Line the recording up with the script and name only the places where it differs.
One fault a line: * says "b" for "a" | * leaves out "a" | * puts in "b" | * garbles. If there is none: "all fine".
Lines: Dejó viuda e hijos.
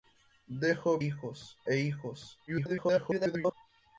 * says "hijos" for "viuda"
* garbles